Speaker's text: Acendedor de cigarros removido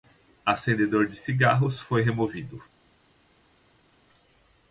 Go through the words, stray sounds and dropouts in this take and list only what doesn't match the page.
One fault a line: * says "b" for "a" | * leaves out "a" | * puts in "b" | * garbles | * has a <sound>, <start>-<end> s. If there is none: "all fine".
* puts in "foi"